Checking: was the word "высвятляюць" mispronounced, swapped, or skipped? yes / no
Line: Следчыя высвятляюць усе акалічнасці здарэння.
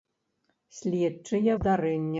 yes